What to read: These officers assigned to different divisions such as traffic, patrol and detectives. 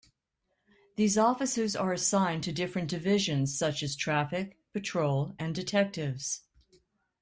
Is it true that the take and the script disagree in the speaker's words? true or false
true